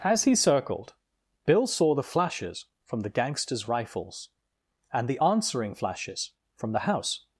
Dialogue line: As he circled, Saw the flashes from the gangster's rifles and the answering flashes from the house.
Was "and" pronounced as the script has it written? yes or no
yes